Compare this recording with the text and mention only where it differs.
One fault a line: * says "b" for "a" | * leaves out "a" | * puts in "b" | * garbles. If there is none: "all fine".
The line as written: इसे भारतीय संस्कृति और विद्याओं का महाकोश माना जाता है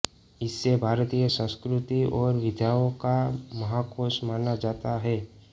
all fine